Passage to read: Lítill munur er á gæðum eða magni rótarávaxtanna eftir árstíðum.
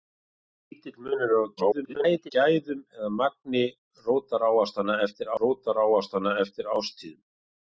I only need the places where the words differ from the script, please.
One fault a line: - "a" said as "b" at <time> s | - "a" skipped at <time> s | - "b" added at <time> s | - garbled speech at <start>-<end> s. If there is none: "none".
- garbled speech at 1.6-2.3 s
- "rótarávaxtanna eftir" added at 5.4 s